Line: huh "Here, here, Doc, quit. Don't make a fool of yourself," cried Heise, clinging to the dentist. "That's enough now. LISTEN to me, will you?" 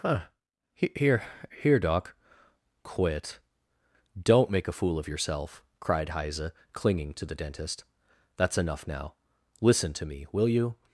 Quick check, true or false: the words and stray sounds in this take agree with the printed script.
true